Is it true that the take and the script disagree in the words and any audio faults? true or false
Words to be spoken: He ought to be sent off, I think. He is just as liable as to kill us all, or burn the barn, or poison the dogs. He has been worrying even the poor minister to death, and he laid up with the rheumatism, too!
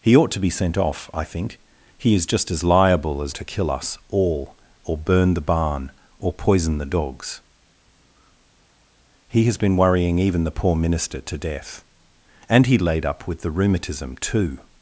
false